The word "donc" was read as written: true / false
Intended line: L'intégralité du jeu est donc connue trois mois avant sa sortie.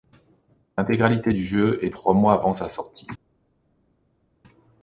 false